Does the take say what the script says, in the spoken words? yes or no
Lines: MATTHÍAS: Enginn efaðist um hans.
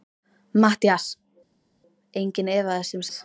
yes